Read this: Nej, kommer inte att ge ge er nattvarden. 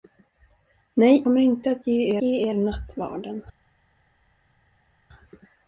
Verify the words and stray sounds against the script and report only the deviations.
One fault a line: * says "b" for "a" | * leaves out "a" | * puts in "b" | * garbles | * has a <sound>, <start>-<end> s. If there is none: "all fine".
all fine